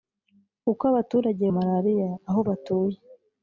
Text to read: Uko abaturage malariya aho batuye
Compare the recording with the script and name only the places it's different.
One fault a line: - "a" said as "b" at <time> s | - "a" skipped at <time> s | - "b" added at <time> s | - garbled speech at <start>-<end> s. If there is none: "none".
none